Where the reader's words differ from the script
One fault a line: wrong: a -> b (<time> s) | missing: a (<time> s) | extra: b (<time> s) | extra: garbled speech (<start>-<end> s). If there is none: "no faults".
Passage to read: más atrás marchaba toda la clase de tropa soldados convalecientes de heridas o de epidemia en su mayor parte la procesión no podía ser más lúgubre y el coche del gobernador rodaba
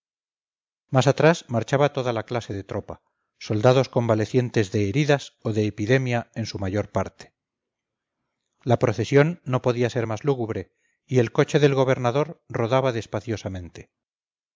no faults